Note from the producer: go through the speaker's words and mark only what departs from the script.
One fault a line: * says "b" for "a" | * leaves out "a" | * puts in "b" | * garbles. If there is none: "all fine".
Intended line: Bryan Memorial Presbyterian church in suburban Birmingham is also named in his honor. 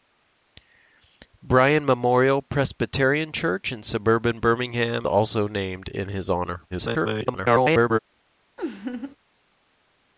* leaves out "is"
* garbles